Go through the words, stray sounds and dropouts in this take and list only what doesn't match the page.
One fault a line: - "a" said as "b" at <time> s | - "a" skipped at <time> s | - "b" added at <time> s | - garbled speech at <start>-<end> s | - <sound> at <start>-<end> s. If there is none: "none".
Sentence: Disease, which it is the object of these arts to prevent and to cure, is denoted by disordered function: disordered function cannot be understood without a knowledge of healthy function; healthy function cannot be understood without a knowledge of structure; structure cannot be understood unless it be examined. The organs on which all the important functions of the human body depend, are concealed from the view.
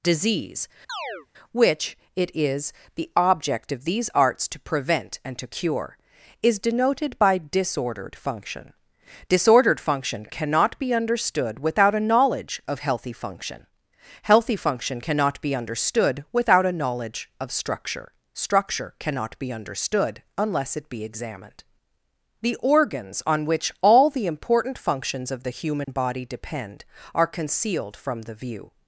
- chirp at 0.9-1.3 s
- dropout at 25.8-25.9 s